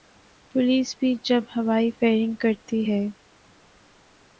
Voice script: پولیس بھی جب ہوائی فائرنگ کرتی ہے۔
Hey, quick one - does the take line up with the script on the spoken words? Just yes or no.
yes